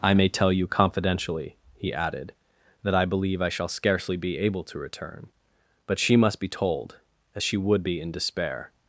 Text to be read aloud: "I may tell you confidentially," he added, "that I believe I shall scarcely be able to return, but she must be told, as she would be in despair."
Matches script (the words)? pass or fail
pass